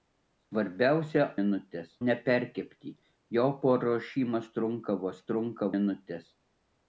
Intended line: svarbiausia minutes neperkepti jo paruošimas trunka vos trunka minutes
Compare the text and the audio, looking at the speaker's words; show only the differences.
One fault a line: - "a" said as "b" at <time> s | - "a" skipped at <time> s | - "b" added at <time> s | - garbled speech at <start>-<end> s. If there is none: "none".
none